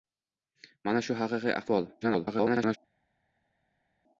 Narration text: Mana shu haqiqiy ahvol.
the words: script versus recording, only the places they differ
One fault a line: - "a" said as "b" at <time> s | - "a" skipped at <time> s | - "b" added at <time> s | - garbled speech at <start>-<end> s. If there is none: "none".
- garbled speech at 2.0-2.8 s